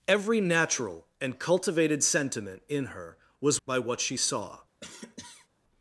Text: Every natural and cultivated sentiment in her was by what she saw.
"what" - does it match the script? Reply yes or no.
yes